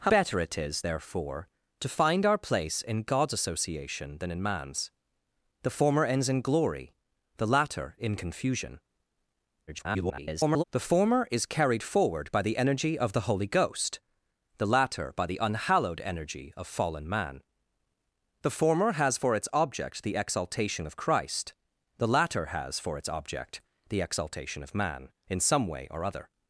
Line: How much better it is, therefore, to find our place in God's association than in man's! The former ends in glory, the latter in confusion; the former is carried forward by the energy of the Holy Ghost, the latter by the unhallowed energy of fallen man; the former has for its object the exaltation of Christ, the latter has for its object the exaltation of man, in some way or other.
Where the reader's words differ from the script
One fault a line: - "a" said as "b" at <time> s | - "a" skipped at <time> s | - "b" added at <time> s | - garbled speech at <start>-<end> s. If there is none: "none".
- "much" skipped at 0.1 s
- garbled speech at 9.7-10.6 s